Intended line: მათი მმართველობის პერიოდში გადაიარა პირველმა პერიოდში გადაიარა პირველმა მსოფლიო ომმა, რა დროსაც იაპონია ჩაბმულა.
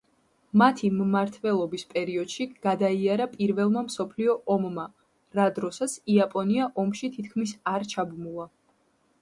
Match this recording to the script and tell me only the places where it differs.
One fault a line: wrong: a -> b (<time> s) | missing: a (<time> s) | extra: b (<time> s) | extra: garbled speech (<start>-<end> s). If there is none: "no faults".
missing: პერიოდში გადაიარა პირველმა (3.8 s)
extra: ომში თითქმის არ (6.9 s)